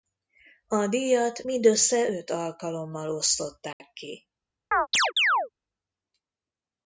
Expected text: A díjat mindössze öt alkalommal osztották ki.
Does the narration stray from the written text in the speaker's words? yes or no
no